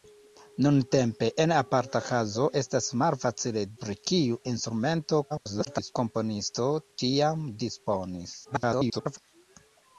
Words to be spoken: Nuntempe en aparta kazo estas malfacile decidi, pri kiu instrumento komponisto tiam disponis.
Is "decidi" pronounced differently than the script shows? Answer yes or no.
yes